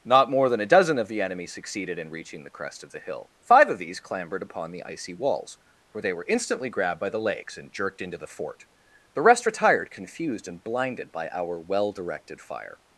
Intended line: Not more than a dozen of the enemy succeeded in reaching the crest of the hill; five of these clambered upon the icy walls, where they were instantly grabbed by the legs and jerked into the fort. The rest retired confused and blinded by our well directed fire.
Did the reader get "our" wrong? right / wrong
right